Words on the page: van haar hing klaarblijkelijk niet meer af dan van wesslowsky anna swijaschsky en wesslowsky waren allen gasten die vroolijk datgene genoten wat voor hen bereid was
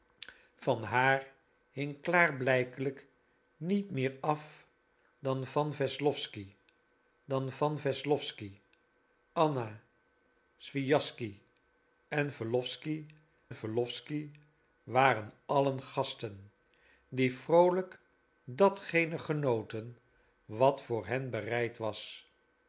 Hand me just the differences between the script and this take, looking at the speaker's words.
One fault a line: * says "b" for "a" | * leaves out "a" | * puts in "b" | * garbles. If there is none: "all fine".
* puts in "dan van wesslowsky"
* puts in "wesslowsky"